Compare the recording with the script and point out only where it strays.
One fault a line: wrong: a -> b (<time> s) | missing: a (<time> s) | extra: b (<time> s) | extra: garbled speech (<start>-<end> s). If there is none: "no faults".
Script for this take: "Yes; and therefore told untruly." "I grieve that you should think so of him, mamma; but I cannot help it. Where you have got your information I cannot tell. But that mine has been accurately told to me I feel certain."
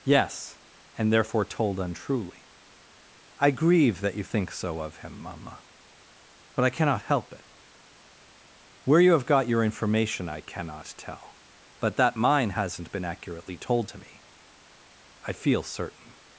missing: should (4.2 s)
wrong: has -> hasn't (12.5 s)